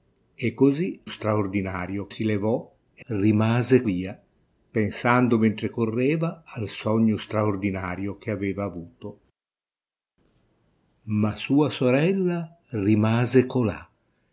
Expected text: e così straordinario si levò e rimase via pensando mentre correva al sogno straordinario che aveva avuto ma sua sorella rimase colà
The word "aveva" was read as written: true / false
true